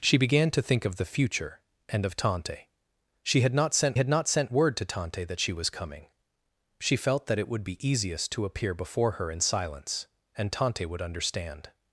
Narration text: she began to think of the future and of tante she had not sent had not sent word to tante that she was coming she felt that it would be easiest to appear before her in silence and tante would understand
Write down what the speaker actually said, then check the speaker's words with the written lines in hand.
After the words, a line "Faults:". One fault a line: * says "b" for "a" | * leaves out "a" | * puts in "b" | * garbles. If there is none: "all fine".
she began to think of the future and of tante she had not sent had not sent word to tante that she was coming she felt that it would be easiest to appear before her in silence and tante would understand
Faults:
all fine